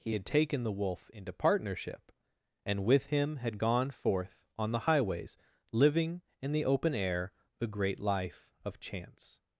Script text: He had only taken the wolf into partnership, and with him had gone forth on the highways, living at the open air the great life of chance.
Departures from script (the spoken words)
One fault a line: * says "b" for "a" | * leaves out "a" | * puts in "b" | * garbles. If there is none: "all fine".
* leaves out "only"
* says "in" for "at"